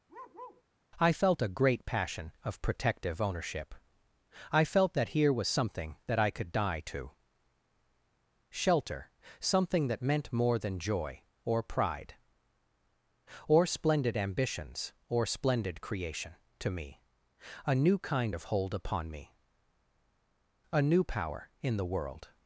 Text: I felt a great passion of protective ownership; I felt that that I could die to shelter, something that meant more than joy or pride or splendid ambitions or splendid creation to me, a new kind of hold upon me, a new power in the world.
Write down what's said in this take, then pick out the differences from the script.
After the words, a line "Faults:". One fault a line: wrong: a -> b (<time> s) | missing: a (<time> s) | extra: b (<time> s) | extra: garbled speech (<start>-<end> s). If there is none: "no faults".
I felt a great passion of protective ownership; I felt that here was something that I could die to shelter, something that meant more than joy or pride or splendid ambitions or splendid creation to me, a new kind of hold upon me, a new power in the world.
Faults:
extra: here was something (5.1 s)